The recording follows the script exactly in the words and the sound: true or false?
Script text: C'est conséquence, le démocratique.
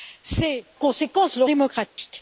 false